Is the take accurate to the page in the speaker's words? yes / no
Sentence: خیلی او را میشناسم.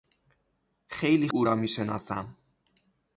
yes